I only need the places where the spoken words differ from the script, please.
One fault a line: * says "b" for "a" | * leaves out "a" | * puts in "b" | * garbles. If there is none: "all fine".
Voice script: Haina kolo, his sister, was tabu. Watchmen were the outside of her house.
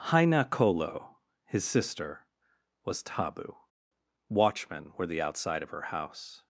all fine